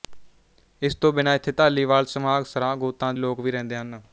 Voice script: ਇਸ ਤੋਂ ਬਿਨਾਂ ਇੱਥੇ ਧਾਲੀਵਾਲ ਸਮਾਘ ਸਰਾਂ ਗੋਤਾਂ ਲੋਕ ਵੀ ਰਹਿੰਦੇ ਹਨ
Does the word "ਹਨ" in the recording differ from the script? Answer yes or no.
no